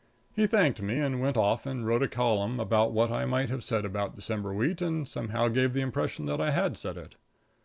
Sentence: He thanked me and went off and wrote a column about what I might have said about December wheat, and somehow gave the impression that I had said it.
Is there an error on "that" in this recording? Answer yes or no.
no